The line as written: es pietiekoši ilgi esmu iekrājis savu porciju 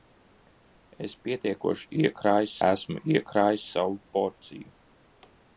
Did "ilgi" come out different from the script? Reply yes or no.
yes